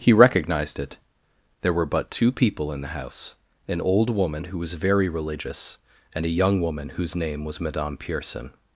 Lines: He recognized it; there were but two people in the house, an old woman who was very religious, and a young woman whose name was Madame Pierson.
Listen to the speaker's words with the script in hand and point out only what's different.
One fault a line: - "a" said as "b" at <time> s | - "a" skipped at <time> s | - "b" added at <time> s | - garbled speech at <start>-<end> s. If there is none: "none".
none